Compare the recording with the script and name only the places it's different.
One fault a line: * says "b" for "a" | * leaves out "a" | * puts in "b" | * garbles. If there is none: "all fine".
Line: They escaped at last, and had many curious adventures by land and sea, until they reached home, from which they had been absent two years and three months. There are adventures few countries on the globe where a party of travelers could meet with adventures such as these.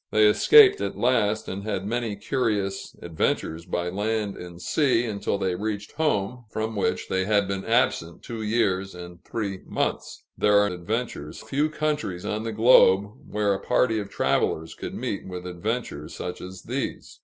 all fine